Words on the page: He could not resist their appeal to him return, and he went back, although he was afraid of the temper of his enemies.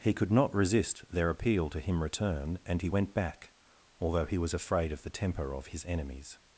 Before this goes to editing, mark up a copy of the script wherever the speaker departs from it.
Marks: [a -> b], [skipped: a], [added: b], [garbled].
He could not resist their appeal to him return, and he went back, although he was afraid of the temper of his enemies.